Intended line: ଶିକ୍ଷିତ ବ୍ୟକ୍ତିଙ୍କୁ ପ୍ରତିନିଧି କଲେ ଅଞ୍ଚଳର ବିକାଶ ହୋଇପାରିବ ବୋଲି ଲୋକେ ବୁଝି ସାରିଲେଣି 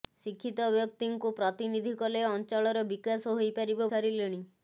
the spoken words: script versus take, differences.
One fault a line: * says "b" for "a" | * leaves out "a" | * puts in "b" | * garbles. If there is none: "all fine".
* leaves out "ବୋଲି ଲୋକେ ବୁଝି"